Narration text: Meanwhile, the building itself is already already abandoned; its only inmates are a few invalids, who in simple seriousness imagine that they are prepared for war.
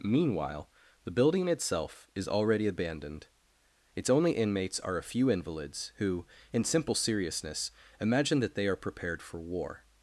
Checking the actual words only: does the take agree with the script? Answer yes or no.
no